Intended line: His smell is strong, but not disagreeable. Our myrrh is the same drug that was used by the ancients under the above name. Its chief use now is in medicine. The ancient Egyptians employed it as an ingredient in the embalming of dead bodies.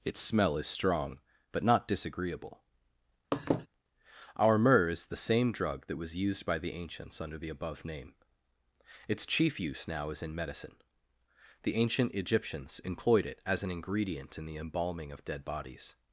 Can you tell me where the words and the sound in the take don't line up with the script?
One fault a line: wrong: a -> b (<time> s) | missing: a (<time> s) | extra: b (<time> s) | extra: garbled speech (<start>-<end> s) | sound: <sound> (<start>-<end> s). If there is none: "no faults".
wrong: His -> Its (0.0 s)
sound: laugh (3.3-3.7 s)